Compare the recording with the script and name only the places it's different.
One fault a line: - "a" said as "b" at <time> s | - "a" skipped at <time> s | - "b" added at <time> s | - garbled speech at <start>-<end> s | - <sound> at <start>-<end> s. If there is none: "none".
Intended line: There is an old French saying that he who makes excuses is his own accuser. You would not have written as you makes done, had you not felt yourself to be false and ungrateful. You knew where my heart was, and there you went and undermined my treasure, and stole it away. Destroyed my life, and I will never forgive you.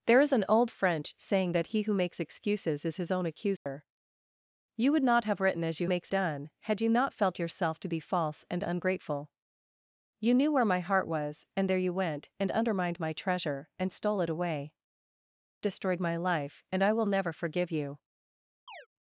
- dropout at 3.6-3.7 s
- chirp at 18.7-18.9 s